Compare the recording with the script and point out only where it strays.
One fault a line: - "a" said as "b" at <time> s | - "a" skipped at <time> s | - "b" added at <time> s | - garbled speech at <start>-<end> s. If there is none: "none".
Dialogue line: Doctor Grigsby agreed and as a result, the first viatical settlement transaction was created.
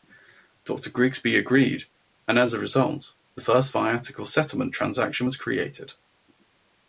none